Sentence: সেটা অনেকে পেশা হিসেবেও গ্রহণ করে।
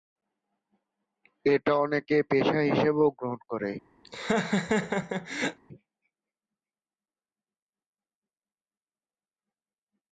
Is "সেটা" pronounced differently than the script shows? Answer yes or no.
yes